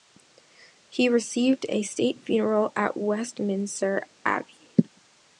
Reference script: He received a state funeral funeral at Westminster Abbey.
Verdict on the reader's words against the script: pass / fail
fail